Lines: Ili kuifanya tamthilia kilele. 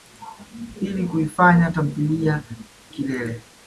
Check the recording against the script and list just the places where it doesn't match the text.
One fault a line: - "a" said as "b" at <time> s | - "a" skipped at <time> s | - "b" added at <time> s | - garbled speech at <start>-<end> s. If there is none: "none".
none